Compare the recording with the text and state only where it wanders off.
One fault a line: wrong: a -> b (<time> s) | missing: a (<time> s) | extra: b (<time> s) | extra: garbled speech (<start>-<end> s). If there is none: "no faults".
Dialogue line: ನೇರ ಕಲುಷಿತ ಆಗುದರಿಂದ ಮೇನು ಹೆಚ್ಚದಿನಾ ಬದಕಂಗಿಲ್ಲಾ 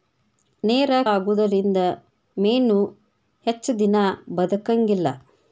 missing: ಕಲುಷಿತ (0.9 s)